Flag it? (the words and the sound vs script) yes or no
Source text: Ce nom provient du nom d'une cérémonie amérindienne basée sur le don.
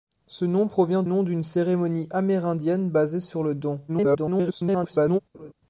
yes